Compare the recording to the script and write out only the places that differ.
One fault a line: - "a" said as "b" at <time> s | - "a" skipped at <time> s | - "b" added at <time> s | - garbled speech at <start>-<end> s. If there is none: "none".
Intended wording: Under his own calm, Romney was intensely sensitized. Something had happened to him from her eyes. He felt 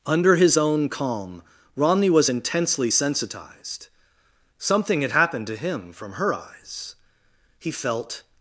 none